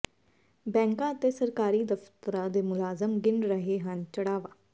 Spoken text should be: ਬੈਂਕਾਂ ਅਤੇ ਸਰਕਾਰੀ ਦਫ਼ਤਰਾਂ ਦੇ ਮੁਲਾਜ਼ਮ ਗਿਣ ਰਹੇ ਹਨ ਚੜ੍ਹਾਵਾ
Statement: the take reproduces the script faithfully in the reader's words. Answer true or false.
true